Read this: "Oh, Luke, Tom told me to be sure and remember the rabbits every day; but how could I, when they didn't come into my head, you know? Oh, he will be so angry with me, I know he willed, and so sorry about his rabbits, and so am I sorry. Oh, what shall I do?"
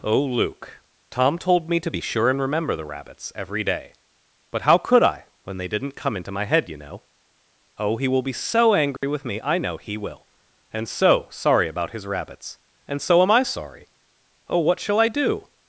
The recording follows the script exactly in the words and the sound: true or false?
false